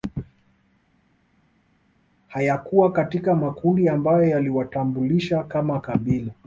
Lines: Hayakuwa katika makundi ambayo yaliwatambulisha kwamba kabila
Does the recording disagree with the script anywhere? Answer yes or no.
yes